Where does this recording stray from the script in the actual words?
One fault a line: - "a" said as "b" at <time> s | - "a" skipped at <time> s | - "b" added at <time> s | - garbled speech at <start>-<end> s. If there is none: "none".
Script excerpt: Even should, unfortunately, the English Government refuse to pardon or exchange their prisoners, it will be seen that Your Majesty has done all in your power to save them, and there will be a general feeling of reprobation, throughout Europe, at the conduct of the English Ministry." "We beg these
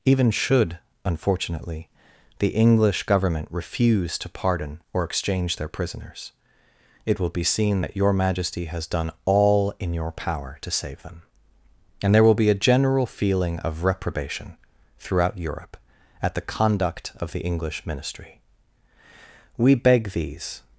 none